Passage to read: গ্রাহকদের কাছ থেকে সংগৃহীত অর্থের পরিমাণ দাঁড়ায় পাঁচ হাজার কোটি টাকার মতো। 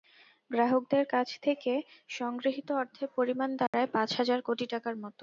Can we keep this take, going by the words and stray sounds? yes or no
no